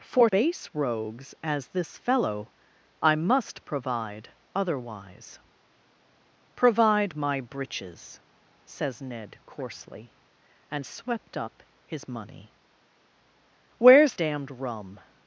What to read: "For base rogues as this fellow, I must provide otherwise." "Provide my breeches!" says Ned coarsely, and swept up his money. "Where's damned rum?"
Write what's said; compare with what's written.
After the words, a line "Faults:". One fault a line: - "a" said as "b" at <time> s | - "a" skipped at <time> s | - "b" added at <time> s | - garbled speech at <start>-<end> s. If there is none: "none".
"For base rogues as this fellow, I must provide otherwise." "Provide my breeches!" says Ned coarsely, and swept up his money. "Where's damned rum?"
Faults:
none